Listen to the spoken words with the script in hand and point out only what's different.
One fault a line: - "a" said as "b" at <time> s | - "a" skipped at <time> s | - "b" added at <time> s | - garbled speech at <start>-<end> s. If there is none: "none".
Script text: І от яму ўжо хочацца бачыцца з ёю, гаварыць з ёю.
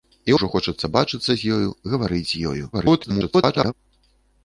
- "от яму" skipped at 0.3 s
- garbled speech at 2.7-3.7 s